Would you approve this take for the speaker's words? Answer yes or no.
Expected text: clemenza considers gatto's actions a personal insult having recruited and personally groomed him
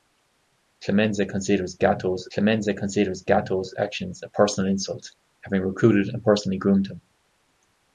no